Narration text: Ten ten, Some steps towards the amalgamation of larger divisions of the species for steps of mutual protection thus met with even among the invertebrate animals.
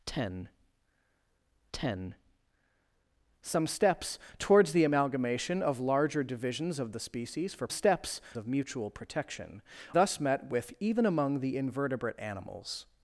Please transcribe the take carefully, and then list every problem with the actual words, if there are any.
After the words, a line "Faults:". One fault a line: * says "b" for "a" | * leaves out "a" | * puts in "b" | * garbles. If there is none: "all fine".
Ten ten, Some steps towards the amalgamation of larger divisions of the species for steps of mutual protection thus met with even among the invertebrate animals.
Faults:
all fine